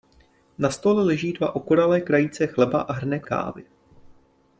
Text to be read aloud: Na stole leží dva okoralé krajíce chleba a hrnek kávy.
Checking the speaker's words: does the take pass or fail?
pass